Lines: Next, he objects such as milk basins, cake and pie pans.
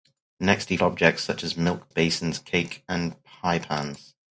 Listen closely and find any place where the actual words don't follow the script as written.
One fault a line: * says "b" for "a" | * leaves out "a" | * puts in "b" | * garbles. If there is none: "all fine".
all fine